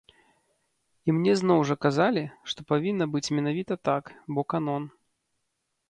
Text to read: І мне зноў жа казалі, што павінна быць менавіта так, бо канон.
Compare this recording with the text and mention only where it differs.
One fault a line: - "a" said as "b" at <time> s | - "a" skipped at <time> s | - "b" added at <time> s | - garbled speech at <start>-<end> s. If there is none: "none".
none